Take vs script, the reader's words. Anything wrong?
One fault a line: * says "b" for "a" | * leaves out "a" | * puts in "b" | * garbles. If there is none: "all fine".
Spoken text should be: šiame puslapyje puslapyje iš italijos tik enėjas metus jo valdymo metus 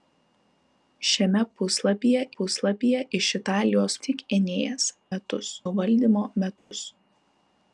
all fine